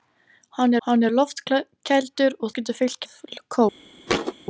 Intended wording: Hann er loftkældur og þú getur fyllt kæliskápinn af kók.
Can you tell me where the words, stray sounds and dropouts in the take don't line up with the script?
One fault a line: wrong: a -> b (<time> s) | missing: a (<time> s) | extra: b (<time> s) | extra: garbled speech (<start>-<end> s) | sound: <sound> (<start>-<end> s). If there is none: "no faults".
extra: hann (0.9 s)
missing: þú (2.5 s)
missing: kæliskápinn (3.0 s)
sound: thud (4.1-4.3 s)